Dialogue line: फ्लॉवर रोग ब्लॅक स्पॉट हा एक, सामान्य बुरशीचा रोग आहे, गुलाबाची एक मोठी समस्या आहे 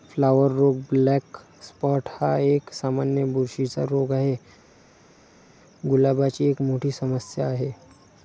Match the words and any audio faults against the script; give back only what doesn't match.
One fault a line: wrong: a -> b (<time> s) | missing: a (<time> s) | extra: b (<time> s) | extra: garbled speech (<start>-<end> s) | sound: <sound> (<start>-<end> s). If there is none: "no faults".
no faults